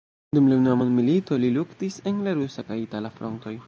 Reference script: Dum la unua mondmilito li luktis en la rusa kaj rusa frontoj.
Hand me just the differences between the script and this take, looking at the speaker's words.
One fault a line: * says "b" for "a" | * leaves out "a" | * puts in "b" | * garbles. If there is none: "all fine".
* says "itala" for "rusa"